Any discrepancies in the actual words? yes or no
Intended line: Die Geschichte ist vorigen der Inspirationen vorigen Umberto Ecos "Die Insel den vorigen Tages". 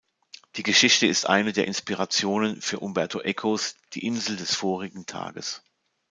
yes